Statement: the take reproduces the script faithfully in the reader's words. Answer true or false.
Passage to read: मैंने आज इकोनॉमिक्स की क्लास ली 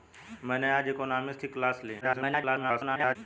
false